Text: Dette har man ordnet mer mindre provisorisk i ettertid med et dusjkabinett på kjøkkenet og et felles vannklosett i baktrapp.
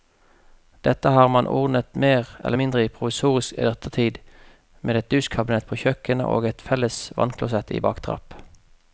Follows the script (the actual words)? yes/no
no